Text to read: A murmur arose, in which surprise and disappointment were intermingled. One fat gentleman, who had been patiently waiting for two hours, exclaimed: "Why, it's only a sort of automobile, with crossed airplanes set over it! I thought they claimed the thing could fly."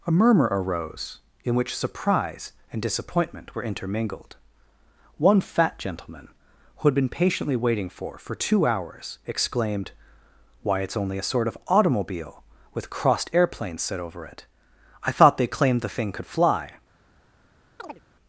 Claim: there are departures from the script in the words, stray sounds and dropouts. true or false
true